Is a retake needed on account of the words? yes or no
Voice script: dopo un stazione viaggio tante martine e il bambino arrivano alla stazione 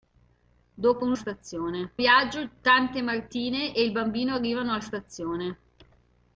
no